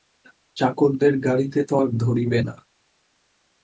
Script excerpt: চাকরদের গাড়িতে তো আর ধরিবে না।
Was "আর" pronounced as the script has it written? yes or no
yes